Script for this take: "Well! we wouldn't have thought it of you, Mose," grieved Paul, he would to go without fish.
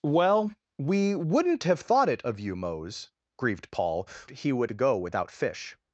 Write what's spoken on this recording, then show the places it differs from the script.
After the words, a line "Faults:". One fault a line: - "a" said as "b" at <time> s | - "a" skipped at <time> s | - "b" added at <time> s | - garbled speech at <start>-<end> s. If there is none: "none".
"Well! we wouldn't have thought it of you, Mose," grieved Paul, he would to go without fish.
Faults:
none